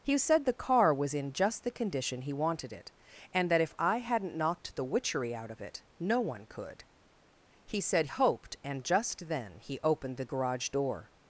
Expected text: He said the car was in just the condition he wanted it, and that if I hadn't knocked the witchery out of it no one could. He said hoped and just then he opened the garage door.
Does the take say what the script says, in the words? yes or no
yes